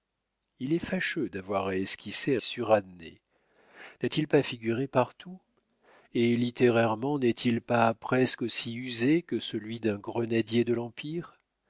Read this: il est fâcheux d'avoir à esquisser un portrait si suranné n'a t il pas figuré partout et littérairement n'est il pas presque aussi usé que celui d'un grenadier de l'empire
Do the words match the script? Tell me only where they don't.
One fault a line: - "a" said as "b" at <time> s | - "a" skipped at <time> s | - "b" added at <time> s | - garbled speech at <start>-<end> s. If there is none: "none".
- "un portrait si" skipped at 2.4 s